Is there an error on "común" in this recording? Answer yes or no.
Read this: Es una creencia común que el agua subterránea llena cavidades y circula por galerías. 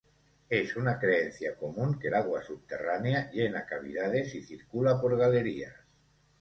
no